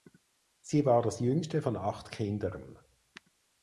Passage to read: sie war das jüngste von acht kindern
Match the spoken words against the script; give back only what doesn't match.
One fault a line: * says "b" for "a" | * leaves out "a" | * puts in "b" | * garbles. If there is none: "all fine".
all fine